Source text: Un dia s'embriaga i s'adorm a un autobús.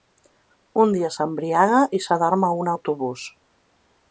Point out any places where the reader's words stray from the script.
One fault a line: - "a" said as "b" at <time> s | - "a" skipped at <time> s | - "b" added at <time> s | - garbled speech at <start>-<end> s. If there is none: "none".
none